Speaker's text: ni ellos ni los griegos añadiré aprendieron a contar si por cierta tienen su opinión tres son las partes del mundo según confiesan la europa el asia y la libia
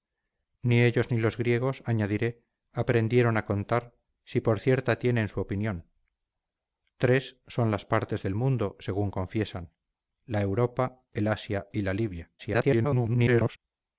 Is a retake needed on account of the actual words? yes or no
yes